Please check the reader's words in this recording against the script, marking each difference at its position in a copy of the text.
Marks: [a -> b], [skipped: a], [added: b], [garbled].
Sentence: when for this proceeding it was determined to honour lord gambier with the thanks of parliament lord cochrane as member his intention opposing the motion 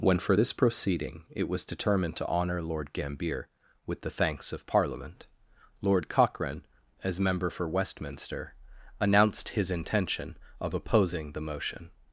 when for this proceeding it was determined to honour lord gambier with the thanks of parliament lord cochrane as member [added: for westminster announced] his intention [added: of] opposing the motion